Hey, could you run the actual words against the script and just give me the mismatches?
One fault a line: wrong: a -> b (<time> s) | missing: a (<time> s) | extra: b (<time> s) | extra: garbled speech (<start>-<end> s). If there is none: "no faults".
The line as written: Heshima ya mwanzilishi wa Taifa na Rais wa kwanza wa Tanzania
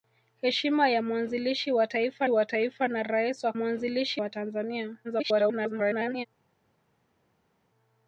extra: wa Taifa (2.3 s)
wrong: kwanza -> mwanzilishi (3.5 s)
extra: garbled speech (5.0-6.3 s)